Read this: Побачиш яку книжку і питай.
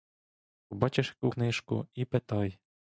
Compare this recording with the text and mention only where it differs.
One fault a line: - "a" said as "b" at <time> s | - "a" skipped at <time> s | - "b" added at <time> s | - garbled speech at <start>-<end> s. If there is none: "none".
none